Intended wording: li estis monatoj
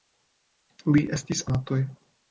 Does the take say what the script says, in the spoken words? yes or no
yes